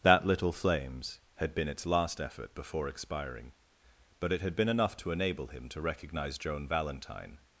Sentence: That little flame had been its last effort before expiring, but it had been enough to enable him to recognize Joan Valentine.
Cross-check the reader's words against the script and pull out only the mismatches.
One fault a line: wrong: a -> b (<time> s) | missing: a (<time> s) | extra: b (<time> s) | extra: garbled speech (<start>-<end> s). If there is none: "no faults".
wrong: flame -> flames (0.5 s)